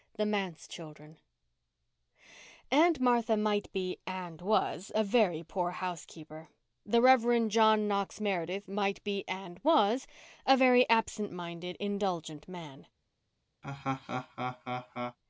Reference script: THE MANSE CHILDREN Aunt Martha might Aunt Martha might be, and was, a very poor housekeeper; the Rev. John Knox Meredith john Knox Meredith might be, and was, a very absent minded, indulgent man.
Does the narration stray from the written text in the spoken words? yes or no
yes